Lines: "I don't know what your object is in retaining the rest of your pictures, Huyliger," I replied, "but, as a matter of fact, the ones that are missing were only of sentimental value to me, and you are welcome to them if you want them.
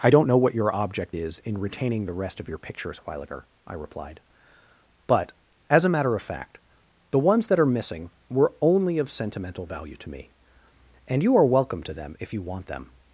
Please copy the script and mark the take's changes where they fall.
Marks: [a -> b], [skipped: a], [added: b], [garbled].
"I don't know what your object is in retaining the rest of your pictures, Huyliger," I replied, "but, as a matter of fact, the ones that are missing were only of sentimental value to me, and you are welcome to them if you want them.